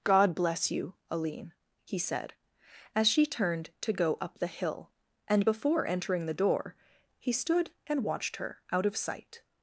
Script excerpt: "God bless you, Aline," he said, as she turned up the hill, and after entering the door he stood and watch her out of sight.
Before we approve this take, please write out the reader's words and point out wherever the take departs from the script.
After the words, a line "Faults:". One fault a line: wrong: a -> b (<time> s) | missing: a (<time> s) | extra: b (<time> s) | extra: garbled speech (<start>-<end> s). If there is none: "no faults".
"God bless you, Aline," he said, as she turned to go up the hill, and before entering the door he stood and watched her out of sight.
Faults:
extra: to go (3.8 s)
wrong: after -> before (5.4 s)
wrong: watch -> watched (8.0 s)